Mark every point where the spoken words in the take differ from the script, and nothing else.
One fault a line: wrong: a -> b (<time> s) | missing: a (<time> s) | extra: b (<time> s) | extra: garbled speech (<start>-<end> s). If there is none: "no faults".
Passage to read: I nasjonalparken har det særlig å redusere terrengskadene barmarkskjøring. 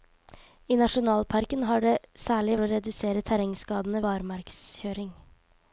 no faults